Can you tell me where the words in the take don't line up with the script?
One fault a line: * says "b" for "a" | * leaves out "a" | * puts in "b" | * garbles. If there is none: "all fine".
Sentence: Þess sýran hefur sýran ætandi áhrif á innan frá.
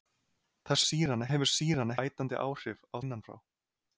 all fine